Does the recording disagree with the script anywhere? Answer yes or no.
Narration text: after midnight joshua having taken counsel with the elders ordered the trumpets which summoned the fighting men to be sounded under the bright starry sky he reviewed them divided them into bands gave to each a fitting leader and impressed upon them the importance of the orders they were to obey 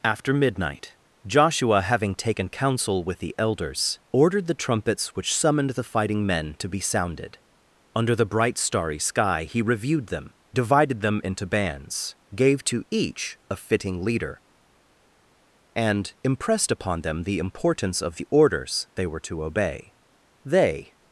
yes